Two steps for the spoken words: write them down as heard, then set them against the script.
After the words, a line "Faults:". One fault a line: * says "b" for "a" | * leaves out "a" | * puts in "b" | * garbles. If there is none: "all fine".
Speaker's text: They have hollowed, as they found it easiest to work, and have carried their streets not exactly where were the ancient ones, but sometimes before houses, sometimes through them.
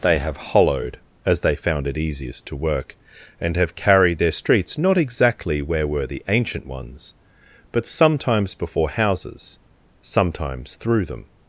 They have hollowed, as they found it easiest to work, and have carried their streets not exactly where were the ancient ones, but sometimes before houses, sometimes through them.
Faults:
all fine